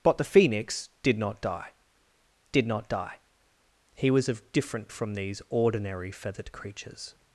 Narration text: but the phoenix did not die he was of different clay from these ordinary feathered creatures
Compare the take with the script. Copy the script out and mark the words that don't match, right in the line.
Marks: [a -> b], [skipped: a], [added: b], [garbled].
but the phoenix did not die [added: did not die] he was of different [skipped: clay] from these ordinary feathered creatures